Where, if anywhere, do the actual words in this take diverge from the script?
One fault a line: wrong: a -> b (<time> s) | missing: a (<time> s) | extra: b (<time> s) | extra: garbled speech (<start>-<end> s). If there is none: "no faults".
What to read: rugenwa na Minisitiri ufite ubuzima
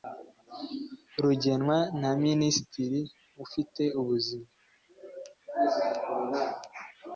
no faults